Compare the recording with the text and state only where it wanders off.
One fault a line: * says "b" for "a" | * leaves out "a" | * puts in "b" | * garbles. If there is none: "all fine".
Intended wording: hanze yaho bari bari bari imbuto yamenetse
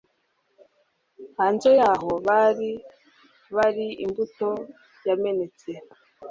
* leaves out "bari"